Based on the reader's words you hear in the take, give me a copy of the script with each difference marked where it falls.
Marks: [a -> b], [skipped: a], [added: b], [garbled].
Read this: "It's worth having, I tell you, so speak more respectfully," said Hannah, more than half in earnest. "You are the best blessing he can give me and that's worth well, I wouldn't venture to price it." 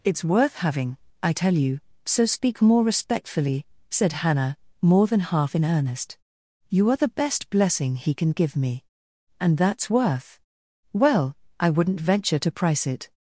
"It's worth having, I tell you, so speak more respectfully," said Hannah, more than half in earnest. "You are the best blessing he can give me and that's worth well, I wouldn't venture to price it."